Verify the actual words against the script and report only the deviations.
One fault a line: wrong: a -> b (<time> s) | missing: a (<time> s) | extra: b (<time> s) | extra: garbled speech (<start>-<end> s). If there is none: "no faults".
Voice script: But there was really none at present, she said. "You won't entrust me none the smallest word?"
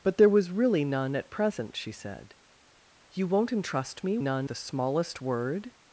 no faults